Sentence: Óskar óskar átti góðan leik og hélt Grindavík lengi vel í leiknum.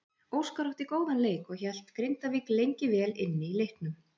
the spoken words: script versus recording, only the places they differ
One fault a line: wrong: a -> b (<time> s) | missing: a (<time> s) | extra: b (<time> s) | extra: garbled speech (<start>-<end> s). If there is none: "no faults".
missing: óskar (0.7 s)
extra: inni (3.3 s)